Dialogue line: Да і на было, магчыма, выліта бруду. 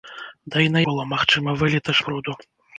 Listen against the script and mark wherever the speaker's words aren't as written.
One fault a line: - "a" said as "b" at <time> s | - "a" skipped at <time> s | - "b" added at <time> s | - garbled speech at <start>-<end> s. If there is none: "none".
none